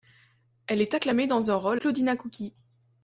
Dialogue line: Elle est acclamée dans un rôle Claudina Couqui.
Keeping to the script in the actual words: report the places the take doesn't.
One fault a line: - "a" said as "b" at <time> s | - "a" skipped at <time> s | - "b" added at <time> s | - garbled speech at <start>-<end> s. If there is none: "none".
none